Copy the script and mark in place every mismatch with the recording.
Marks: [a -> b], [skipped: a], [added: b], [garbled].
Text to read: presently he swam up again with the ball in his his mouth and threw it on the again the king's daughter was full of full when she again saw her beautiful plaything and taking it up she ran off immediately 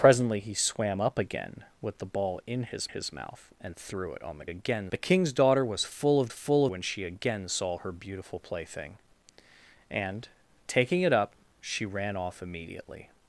presently he swam up again with the ball in his his mouth and threw it on the again the king's daughter was full of full when she again saw her beautiful plaything and taking it up she ran off immediately